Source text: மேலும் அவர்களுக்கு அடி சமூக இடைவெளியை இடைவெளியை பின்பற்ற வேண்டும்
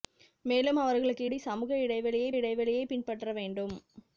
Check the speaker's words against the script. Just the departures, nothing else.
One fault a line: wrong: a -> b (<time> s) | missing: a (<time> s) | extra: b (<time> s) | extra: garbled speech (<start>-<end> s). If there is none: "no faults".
no faults